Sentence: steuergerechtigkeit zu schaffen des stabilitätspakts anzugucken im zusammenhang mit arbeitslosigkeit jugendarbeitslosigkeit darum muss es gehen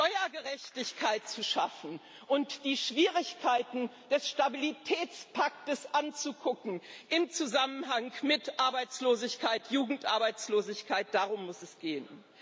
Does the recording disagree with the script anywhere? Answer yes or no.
yes